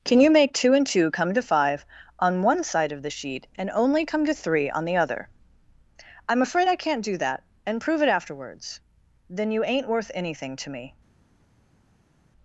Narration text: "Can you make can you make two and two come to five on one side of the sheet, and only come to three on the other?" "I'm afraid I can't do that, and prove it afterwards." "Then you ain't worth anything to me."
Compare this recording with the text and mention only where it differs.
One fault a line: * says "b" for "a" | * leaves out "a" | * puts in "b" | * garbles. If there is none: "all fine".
* leaves out "can you make"